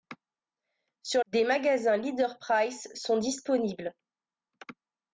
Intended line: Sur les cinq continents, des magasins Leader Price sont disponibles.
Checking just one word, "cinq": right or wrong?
wrong